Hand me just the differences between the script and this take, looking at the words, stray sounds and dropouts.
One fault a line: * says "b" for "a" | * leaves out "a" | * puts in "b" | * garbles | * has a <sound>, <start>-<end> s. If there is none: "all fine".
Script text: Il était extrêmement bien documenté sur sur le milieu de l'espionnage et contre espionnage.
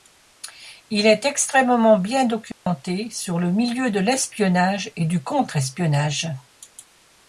* says "est" for "était"
* has a dropout, 2.5-2.7 s
* leaves out "sur"
* puts in "du"